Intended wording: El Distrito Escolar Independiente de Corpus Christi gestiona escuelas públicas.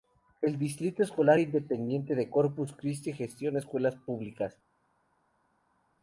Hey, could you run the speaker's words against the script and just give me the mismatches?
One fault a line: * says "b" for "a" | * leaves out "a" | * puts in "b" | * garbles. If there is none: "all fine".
all fine